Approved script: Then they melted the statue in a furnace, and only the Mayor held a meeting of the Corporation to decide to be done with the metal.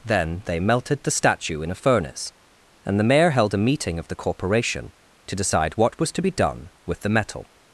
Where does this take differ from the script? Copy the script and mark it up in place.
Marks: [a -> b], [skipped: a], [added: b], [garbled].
Then they melted the statue in a furnace, and [skipped: only] the Mayor held a meeting of the Corporation to decide [added: what was] to be done with the metal.